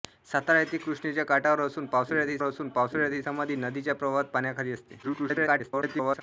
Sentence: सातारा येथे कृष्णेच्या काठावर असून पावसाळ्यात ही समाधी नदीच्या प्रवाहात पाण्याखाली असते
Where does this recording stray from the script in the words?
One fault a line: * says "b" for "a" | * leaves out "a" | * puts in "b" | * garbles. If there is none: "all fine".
* puts in "असून पावसाळ्यात ही"
* garbles